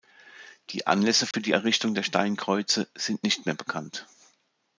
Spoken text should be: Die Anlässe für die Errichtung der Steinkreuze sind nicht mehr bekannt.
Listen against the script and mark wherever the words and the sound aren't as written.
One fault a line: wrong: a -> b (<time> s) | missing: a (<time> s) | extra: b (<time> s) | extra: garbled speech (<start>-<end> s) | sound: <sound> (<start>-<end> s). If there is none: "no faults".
sound: dropout (1.3-1.3 s)